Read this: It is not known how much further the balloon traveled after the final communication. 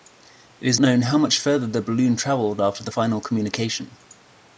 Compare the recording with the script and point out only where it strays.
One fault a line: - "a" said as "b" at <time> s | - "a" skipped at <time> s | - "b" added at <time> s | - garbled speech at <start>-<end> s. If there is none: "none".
- "not" skipped at 0.8 s